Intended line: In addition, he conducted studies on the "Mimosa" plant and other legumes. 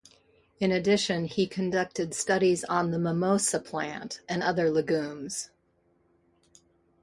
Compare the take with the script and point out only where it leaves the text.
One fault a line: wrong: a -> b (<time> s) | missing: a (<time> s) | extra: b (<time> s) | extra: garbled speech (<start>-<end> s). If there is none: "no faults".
no faults